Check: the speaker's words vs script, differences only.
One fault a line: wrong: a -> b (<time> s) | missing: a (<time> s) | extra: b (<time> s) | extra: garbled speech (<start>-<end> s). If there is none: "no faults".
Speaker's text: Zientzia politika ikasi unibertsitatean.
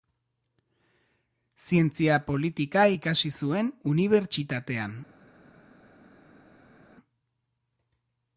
extra: zuen (3.4 s)